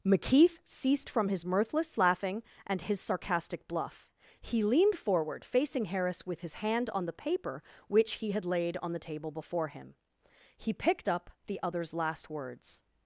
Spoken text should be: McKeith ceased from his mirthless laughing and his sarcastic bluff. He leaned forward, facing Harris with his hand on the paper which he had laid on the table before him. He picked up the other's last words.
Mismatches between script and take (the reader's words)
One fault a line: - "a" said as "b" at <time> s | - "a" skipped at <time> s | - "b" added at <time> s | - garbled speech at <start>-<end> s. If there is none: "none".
none